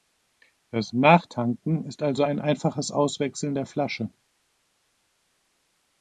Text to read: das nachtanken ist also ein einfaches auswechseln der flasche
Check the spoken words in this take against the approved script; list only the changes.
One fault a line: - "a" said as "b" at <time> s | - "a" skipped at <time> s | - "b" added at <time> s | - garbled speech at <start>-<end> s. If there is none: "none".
none